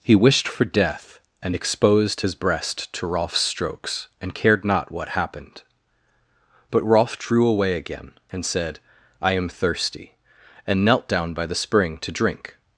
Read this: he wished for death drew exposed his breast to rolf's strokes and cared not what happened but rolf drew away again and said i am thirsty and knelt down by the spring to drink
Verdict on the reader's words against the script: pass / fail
fail